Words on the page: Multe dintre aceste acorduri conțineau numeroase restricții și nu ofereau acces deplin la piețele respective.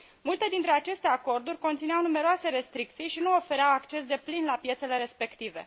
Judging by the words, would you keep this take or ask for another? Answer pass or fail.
pass